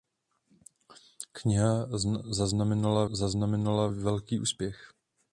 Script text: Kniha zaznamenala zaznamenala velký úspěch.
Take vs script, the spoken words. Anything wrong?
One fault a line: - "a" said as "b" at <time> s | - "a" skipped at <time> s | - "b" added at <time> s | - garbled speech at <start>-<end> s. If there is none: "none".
none